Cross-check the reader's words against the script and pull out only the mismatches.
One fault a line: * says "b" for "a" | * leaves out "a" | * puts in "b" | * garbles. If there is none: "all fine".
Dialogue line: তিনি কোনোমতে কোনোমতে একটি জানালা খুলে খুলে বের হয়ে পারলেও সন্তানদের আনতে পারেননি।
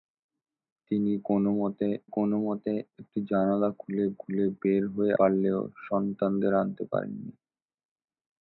all fine